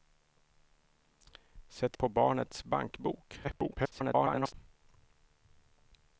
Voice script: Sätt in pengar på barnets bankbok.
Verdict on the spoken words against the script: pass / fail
fail